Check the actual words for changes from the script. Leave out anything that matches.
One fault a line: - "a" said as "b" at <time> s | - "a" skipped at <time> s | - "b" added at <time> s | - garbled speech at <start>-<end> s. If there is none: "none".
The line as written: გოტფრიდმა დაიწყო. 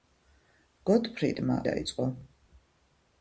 none